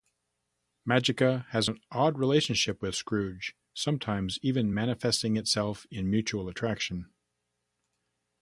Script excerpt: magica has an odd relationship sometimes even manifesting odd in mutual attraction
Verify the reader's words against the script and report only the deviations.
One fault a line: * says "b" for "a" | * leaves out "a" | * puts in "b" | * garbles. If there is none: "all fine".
* puts in "with scrooge"
* says "itself" for "odd"